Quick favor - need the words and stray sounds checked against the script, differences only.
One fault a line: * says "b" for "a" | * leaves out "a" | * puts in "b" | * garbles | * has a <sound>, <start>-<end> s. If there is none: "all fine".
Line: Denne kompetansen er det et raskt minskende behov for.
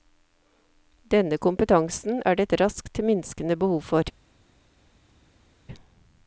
all fine